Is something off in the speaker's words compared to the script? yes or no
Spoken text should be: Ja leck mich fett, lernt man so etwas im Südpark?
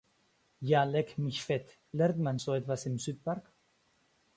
no